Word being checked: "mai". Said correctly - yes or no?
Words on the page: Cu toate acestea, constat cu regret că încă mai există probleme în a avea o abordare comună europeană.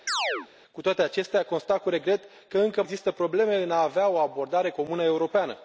no